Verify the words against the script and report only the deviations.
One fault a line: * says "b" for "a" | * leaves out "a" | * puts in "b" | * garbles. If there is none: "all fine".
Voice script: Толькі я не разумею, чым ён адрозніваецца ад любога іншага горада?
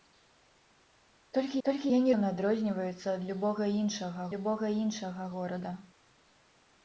* puts in "толькі"
* leaves out "разумею чым"
* puts in "любога іншага"